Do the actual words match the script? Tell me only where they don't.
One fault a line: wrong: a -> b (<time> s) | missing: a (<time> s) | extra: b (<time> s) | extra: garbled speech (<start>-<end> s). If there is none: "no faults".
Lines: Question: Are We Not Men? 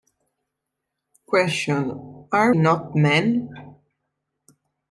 missing: We (2.6 s)